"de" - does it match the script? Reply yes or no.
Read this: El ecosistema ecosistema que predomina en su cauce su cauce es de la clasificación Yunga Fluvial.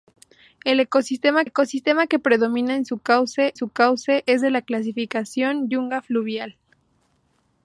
yes